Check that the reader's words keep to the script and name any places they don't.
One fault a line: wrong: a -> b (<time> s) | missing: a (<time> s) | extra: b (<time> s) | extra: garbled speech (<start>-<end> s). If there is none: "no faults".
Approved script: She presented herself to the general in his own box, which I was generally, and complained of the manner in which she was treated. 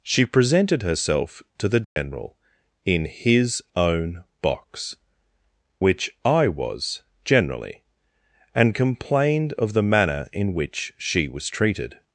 no faults